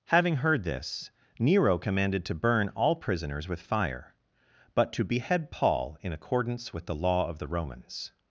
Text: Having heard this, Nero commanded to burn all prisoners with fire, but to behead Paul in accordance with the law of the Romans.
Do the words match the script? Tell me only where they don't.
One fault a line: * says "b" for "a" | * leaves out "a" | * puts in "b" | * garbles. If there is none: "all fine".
all fine